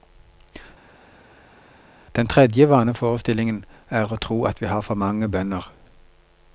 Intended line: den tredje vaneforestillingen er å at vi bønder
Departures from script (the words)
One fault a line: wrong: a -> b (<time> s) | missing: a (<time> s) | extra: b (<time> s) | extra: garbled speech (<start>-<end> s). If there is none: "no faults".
extra: tro (4.3 s)
extra: har for mange (4.7 s)